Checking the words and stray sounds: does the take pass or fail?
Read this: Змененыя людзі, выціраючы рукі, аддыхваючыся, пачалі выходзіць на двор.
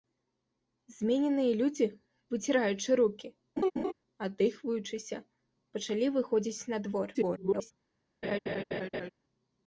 fail